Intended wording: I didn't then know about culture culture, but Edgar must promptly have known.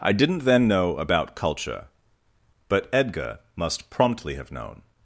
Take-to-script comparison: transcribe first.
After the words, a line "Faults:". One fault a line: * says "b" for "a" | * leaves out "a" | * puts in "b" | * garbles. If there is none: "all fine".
I didn't then know about culture, but Edgar must promptly have known.
Faults:
* leaves out "culture"